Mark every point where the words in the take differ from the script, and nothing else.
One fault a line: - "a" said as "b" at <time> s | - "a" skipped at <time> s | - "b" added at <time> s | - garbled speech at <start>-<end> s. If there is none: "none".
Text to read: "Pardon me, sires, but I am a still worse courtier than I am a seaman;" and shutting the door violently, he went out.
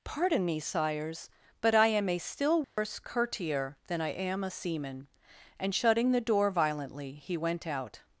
none